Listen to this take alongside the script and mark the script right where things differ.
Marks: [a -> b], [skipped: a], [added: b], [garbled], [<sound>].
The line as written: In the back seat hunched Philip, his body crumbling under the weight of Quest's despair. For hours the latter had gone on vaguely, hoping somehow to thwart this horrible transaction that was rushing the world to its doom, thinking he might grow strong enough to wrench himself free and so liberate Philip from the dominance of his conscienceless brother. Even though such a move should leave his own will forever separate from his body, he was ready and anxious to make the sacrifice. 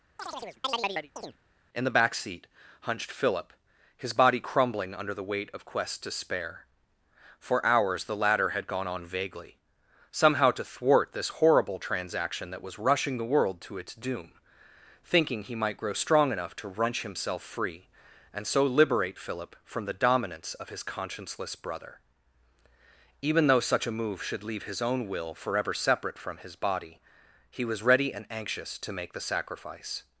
[chirp] In the back seat hunched Philip, his body crumbling under the weight of Quest's despair. For hours the latter had gone on vaguely, [skipped: hoping] somehow to thwart this horrible transaction that was rushing the world to its doom, thinking he might grow strong enough to wrench himself free and so liberate Philip from the dominance of his conscienceless brother. Even though such a move should leave his own will forever separate from his body, he was ready and anxious to make the sacrifice.